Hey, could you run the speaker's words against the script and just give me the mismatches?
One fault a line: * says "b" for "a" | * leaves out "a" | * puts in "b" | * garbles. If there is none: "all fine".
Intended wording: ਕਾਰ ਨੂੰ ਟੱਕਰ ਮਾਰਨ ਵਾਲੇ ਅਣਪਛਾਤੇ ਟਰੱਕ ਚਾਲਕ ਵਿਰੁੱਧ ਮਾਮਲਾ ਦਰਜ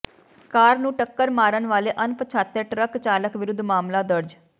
all fine